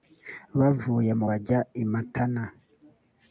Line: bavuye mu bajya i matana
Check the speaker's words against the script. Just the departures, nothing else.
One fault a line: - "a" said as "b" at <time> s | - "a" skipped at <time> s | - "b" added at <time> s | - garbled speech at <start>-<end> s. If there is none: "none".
none